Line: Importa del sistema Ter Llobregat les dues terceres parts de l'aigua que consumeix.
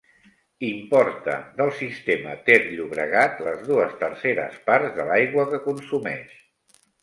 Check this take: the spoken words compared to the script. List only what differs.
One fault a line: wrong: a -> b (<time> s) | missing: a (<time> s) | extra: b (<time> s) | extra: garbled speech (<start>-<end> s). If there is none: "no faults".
no faults